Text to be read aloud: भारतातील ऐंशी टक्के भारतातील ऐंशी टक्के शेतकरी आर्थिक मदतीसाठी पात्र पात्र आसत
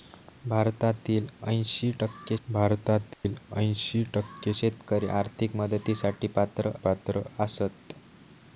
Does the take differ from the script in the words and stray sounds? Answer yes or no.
yes